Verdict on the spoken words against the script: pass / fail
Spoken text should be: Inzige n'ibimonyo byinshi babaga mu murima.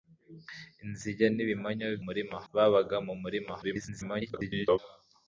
fail